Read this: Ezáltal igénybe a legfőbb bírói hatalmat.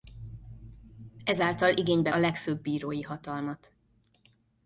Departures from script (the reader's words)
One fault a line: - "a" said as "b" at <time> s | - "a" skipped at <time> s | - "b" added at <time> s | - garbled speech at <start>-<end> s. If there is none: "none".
none